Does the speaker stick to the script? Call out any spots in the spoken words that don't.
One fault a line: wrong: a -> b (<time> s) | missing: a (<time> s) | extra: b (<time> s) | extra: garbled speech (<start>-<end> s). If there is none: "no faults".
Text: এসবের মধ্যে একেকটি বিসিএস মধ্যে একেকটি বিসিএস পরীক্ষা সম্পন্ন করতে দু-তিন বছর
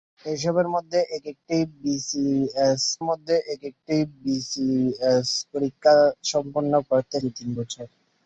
no faults